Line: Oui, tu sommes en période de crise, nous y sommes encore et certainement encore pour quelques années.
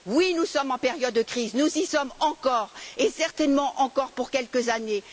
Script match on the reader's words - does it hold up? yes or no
no